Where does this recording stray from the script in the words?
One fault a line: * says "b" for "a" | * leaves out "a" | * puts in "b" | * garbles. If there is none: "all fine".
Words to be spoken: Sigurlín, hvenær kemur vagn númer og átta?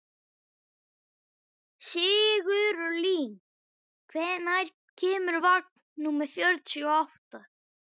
* puts in "fjörutíu"